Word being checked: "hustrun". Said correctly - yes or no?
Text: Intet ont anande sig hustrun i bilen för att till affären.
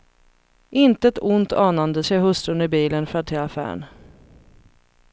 yes